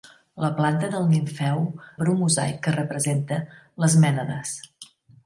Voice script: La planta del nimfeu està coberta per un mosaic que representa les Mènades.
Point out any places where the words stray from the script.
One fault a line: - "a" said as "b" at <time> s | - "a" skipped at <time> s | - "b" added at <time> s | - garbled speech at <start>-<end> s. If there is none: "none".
- "està coberta" skipped at 1.6 s